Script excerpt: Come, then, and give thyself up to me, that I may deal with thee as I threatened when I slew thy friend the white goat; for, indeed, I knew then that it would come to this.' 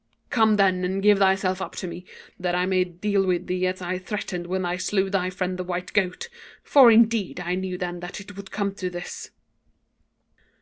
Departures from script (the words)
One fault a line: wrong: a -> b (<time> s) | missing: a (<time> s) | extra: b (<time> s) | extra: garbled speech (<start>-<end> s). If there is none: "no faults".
no faults